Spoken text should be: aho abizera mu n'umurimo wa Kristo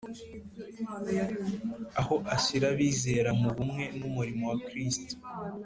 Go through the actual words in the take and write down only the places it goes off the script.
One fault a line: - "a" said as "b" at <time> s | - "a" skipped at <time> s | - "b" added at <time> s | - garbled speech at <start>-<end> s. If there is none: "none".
- "ashyira" added at 2.4 s
- "bumwe" added at 3.5 s